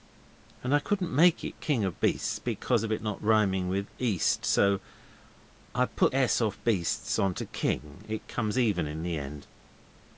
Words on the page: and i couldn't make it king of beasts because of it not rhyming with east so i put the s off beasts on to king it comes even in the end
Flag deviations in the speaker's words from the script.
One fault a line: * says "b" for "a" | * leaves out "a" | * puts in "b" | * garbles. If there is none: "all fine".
* leaves out "the"